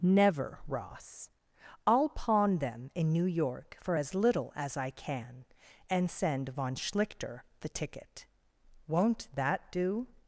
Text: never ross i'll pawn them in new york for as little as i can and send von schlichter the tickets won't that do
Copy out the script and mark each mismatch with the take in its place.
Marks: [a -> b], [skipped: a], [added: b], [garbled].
never ross i'll pawn them in new york for as little as i can and send von schlichter the [tickets -> ticket] won't that do